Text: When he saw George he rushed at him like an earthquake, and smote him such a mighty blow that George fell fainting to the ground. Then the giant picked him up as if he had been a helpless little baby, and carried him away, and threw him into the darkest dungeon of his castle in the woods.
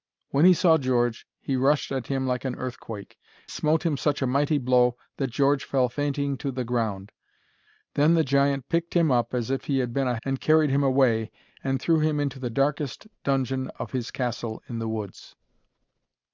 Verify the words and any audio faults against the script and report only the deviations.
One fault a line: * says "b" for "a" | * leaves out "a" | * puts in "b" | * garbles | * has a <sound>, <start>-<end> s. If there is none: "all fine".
* leaves out "and"
* leaves out "helpless little baby"